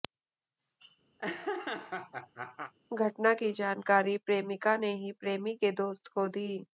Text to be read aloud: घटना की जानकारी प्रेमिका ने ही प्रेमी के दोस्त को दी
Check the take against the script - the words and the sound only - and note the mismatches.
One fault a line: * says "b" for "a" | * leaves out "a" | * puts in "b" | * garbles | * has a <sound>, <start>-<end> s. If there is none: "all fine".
* has a laugh, 1.2-2.7 s